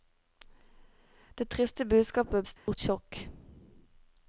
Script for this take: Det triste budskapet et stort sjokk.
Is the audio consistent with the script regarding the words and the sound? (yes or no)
no